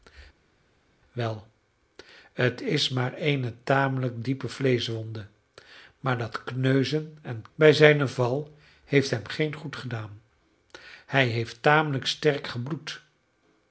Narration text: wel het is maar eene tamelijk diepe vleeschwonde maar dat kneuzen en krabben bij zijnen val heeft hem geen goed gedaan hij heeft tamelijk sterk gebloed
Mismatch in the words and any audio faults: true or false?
true